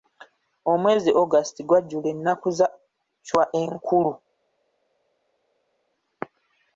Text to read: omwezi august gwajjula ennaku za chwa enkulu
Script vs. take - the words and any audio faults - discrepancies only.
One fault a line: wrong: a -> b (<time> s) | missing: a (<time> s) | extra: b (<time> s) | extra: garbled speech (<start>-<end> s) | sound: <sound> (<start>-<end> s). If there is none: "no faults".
no faults